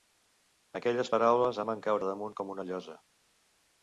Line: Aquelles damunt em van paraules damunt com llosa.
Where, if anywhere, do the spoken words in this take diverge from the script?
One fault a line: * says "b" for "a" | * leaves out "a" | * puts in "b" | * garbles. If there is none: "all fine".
* says "paraules" for "damunt"
* says "caure" for "paraules"
* puts in "una"